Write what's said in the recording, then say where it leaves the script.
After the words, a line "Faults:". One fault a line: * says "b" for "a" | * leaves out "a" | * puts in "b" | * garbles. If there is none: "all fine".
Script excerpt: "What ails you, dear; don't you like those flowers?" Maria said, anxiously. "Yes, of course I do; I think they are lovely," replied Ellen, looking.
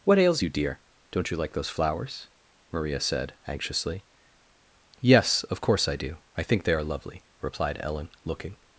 "What ails you, dear; don't you like those flowers?" Maria said, anxiously. "Yes, of course I do; I think they are lovely," replied Ellen, looking.
Faults:
all fine